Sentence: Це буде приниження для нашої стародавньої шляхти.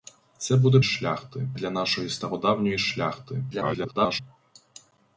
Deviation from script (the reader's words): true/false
true